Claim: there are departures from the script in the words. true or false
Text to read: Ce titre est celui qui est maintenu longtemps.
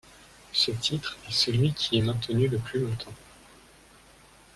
true